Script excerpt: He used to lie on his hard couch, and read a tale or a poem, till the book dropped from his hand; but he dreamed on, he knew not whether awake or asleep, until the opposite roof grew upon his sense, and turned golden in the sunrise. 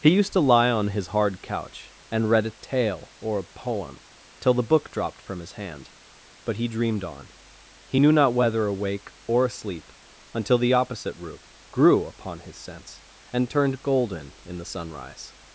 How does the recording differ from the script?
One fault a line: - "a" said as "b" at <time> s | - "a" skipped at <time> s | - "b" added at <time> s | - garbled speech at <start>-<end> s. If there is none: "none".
none